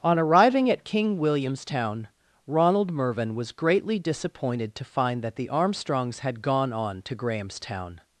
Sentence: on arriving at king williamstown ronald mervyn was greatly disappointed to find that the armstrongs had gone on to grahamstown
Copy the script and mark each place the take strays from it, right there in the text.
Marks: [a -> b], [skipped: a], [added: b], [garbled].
on arriving at king williamstown ronald mervyn was greatly disappointed to find that the armstrongs had gone on to grahamstown